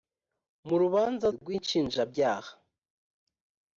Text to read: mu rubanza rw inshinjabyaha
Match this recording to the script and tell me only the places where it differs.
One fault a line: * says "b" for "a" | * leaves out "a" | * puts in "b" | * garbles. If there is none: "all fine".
all fine